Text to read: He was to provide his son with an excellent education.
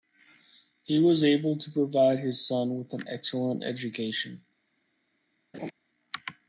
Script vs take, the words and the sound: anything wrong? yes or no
yes